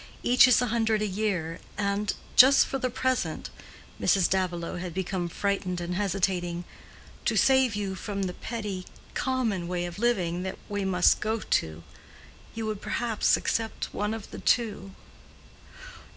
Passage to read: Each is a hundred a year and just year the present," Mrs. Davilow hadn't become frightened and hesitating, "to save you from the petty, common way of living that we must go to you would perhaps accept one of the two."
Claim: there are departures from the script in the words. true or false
true